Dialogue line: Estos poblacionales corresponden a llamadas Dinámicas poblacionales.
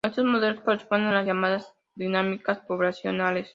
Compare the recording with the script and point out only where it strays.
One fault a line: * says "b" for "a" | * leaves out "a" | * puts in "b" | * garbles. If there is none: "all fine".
* says "modelos" for "poblacionales"
* puts in "las"